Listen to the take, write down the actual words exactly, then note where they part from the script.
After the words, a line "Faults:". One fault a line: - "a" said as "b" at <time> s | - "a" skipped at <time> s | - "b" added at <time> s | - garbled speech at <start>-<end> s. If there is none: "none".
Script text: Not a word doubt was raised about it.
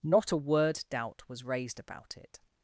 Not a word doubt was raised about it.
Faults:
none